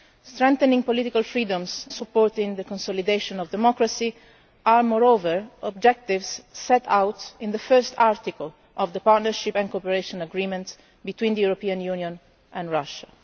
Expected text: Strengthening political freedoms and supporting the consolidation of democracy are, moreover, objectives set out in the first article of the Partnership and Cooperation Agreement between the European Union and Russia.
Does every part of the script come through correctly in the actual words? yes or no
no